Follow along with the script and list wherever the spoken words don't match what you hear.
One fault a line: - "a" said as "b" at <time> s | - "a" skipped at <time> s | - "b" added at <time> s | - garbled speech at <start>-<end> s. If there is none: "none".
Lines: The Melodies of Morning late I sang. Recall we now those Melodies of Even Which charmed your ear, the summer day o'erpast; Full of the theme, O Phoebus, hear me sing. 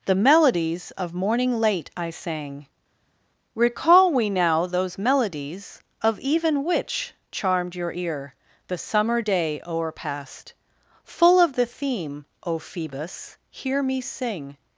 none